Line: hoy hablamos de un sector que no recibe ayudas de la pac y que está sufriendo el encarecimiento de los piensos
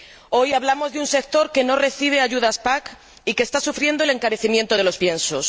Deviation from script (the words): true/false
false